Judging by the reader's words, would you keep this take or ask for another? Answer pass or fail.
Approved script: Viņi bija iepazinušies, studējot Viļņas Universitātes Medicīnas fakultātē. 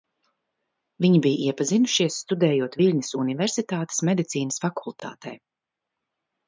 pass